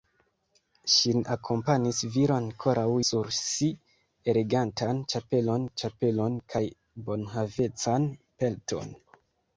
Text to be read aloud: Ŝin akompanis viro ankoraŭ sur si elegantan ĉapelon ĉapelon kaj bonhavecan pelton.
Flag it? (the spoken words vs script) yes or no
no